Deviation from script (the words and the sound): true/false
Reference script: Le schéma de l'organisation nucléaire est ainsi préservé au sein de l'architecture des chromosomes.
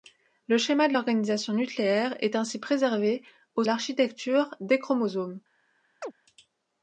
true